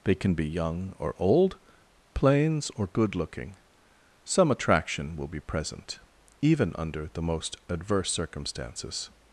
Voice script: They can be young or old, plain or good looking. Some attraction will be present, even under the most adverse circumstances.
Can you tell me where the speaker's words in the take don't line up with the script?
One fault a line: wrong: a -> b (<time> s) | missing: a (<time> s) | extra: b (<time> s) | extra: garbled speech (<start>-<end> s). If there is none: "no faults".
wrong: plain -> plains (2.1 s)